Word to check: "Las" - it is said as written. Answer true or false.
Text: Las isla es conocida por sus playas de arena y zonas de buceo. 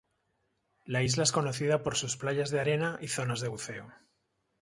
false